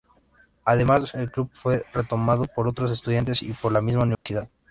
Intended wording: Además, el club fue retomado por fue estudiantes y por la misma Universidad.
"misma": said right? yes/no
yes